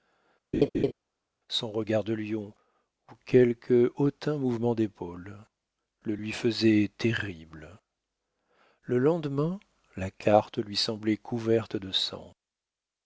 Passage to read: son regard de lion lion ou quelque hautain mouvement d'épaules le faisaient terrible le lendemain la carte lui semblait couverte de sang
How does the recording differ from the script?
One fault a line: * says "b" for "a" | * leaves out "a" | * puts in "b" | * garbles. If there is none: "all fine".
* leaves out "lion"
* puts in "lui"